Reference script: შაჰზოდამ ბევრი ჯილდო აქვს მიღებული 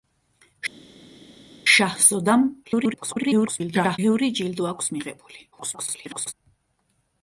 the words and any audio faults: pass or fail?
fail